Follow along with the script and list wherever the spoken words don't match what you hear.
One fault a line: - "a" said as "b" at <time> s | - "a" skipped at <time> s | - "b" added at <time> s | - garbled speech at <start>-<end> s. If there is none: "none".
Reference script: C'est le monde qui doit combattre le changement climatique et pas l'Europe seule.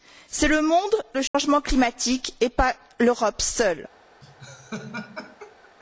- "qui doit combattre" skipped at 0.9 s